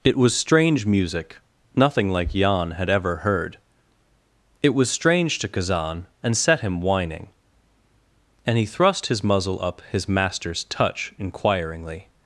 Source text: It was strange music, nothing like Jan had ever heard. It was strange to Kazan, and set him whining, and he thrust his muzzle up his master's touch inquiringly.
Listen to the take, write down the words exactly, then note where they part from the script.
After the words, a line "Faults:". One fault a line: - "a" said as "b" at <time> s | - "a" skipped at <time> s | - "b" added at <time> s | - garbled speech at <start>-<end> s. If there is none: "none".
It was strange music, nothing like Jan had ever heard. It was strange to Kazan, and set him whining, and he thrust his muzzle up his master's touch inquiringly.
Faults:
none